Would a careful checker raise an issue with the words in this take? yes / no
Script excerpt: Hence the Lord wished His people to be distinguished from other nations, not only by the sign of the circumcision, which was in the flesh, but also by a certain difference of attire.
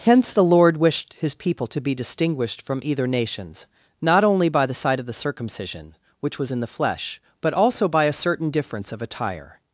yes